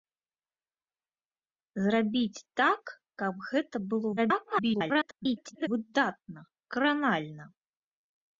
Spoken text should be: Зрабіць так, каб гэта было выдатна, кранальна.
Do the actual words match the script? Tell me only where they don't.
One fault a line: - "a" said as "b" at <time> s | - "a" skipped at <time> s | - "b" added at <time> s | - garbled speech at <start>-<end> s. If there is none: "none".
- garbled speech at 4.2-5.7 s